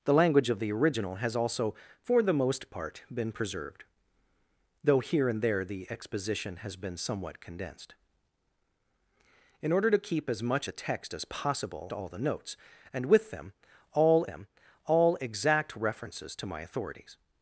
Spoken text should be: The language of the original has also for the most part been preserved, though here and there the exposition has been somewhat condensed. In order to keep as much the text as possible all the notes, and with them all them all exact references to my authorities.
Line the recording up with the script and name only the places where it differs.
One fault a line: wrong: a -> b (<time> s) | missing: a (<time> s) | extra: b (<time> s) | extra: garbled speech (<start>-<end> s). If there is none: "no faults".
no faults